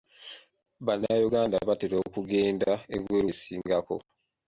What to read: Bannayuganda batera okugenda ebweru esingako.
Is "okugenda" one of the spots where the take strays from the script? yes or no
no